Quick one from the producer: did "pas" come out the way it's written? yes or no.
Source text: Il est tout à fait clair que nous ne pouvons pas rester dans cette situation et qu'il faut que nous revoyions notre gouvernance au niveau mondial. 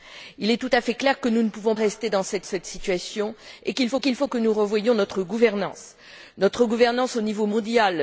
no